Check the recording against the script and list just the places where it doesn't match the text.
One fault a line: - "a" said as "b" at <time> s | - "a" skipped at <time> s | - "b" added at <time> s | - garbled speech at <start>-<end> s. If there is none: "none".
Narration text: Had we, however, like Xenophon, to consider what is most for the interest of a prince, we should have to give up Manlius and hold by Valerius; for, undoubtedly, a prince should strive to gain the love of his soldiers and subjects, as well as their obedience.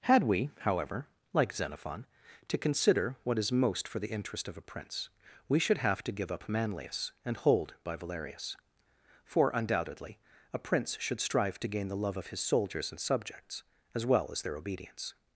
none